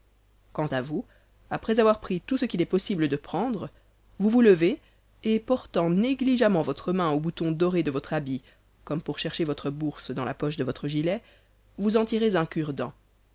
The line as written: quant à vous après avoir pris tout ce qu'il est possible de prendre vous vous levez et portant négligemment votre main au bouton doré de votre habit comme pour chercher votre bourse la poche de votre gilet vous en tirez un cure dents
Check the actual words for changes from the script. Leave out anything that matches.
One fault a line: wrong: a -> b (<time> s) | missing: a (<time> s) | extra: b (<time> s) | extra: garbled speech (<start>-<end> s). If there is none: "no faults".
extra: dans (10.1 s)